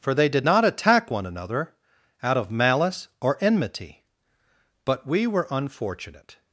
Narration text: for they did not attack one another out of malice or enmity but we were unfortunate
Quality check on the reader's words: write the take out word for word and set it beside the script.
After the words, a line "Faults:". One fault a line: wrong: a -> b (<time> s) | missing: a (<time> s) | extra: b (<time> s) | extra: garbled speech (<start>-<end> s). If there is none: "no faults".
for they did not attack one another out of malice or enmity but we were unfortunate
Faults:
no faults